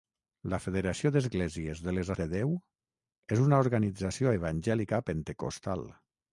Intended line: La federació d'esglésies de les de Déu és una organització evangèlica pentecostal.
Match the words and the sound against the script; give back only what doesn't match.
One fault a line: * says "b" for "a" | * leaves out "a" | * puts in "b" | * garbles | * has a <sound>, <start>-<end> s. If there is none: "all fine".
all fine